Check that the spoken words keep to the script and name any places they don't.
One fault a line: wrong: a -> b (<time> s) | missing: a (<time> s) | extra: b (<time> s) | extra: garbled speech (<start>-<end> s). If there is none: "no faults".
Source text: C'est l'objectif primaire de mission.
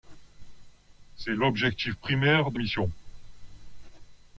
no faults